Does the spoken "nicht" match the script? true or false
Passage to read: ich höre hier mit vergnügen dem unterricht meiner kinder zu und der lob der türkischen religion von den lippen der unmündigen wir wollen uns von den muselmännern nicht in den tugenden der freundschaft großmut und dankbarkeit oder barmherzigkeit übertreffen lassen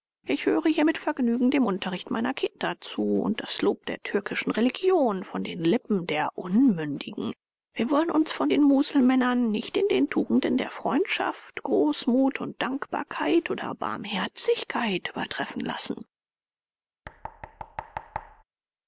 true